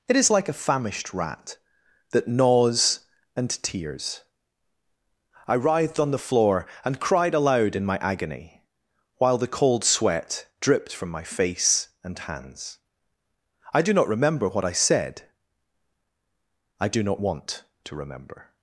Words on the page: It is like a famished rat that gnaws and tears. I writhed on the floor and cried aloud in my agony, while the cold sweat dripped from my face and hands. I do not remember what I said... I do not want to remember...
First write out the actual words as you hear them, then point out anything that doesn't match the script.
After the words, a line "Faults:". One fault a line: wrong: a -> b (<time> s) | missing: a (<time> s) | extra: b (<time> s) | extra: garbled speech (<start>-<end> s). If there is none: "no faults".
It is like a famished rat that gnaws and tears. I writhed on the floor and cried aloud in my agony, while the cold sweat dripped from my face and hands. I do not remember what I said... I do not want to remember...
Faults:
no faults